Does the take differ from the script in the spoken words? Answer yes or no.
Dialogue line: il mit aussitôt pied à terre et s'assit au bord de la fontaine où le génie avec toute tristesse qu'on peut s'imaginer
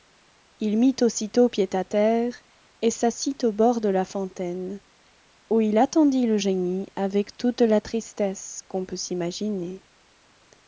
yes